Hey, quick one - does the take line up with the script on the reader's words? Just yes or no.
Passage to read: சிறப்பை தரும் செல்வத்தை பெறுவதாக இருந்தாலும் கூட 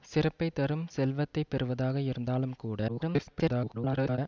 no